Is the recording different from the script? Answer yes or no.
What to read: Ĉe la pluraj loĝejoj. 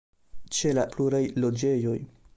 no